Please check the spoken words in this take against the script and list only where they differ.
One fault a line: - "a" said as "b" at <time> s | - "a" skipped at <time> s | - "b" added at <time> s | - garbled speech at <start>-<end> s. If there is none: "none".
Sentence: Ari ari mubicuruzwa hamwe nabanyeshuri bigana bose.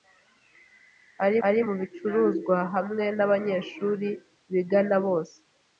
none